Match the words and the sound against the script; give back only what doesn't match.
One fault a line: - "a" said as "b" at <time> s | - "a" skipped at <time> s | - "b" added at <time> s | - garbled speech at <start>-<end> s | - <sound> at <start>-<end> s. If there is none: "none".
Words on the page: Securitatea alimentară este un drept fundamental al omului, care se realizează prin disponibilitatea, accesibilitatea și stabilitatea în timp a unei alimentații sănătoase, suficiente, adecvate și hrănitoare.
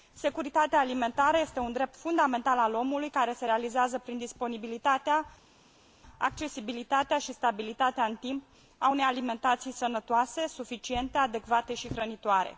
none